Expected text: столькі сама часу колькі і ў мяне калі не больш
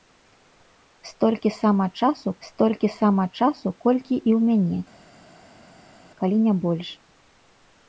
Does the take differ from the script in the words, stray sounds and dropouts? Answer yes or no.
yes